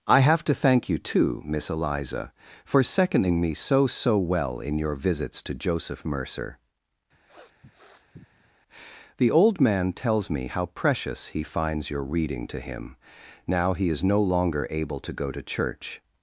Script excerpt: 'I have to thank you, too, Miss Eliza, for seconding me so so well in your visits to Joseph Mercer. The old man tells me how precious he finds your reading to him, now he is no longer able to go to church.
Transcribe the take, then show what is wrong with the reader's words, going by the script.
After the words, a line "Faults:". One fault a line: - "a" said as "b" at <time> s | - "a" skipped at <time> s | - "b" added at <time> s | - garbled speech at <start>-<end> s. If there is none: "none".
'I have to thank you, too, Miss Eliza, for seconding me so so well in your visits to Joseph Mercer. The old man tells me how precious he finds your reading to him, now he is no longer able to go to church.
Faults:
none